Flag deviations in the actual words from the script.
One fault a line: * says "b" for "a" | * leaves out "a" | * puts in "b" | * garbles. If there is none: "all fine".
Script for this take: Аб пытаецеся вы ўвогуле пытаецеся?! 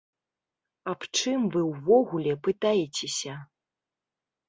* says "чым" for "пытаецеся"